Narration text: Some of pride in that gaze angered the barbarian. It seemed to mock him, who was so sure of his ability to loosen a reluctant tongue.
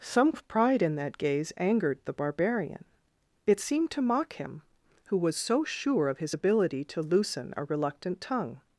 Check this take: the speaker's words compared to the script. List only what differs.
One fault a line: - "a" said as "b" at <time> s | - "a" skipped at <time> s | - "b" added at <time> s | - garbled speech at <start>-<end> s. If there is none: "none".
none